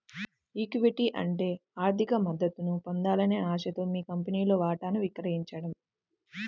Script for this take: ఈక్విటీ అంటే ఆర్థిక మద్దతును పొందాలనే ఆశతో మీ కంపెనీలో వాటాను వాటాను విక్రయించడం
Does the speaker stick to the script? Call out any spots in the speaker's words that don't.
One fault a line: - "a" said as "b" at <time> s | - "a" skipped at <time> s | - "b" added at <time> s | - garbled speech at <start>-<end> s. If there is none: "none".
- "వాటాను" skipped at 5.0 s